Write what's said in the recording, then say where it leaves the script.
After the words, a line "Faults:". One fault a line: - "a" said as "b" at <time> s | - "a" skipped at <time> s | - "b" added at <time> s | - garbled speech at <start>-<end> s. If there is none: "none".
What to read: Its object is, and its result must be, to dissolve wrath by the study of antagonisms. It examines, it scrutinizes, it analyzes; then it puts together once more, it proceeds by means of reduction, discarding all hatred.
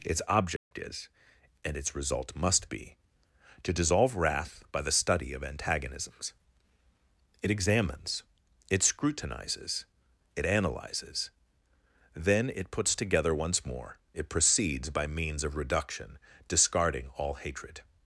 Its object is, and its result must be, to dissolve wrath by the study of antagonisms. It examines, it scrutinizes, it analyzes; then it puts together once more, it proceeds by means of reduction, discarding all hatred.
Faults:
none